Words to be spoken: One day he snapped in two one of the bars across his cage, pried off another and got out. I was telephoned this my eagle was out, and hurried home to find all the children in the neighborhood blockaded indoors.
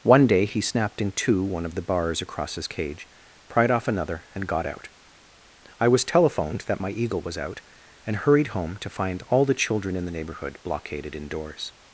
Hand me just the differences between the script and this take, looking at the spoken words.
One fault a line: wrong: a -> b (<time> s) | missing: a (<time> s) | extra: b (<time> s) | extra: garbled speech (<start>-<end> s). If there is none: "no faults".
wrong: this -> that (6.7 s)